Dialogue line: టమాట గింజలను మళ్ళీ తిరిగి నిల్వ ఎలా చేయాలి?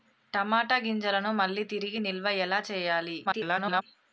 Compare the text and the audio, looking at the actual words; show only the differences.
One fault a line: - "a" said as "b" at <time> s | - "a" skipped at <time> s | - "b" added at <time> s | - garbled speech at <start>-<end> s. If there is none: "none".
- garbled speech at 3.3-3.8 s